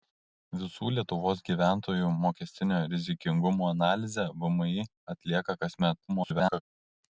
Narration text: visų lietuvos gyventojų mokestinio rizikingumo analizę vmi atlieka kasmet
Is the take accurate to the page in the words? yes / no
no